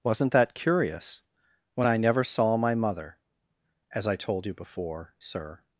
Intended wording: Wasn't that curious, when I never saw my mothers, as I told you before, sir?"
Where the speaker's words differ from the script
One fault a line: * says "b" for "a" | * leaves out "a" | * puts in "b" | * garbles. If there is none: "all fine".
* says "mother" for "mothers"